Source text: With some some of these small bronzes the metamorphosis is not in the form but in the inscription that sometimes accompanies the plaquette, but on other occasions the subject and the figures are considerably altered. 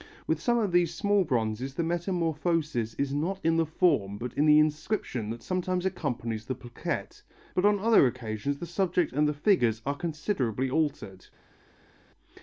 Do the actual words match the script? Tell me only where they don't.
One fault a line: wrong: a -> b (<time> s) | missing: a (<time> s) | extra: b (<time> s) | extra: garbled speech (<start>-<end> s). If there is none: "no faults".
missing: some (0.6 s)